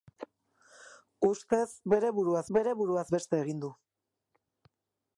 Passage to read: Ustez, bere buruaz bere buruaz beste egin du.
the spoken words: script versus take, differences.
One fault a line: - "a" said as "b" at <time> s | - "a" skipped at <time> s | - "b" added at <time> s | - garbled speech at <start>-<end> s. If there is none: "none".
none